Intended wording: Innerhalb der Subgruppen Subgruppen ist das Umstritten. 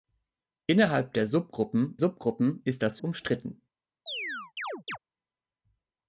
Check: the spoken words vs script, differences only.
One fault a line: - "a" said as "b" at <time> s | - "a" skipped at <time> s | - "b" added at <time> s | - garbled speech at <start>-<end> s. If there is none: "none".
none